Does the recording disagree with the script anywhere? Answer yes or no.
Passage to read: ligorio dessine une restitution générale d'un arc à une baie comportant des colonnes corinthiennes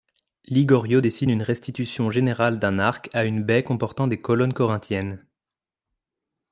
no